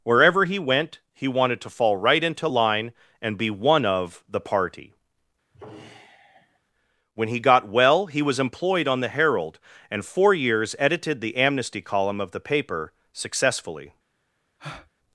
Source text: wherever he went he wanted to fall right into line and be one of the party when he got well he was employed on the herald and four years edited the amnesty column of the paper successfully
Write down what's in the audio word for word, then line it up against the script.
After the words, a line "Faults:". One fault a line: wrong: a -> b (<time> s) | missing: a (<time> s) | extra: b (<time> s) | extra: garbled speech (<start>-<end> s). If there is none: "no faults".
wherever he went he wanted to fall right into line and be one of the party when he got well he was employed on the herald and four years edited the amnesty column of the paper successfully
Faults:
no faults